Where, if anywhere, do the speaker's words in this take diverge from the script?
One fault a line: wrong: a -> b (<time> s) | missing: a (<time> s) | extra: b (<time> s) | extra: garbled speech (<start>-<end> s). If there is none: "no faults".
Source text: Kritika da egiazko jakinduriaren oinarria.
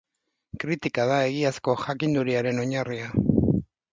no faults